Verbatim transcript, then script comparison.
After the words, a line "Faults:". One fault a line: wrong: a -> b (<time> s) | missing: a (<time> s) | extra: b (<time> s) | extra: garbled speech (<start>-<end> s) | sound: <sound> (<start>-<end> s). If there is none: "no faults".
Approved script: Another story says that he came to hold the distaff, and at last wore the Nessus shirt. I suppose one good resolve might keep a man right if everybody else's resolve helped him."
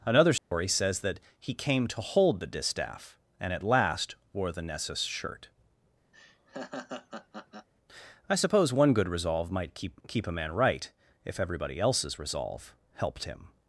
Another story says that he came to hold the distaff, and at last wore the Nessus shirt. I suppose one good resolve might keep keep a man right if everybody else's resolve helped him."
Faults:
sound: dropout (0.4-0.5 s)
sound: laugh (6.1-7.7 s)
extra: keep (10.1 s)